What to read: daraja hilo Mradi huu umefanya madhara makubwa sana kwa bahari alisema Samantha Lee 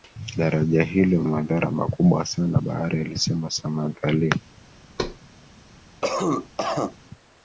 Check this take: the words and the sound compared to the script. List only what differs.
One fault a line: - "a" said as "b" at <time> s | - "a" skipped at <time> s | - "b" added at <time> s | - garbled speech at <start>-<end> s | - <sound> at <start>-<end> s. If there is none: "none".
- "Mradi huu umefanya" skipped at 1.2 s
- "kwa" skipped at 2.6 s
- thud at 5.0-5.2 s
- cough at 6.0-7.0 s